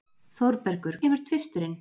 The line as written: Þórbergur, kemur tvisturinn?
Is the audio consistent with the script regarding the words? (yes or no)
yes